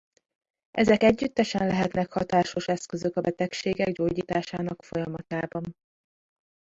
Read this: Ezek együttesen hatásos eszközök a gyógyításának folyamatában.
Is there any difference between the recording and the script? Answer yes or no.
yes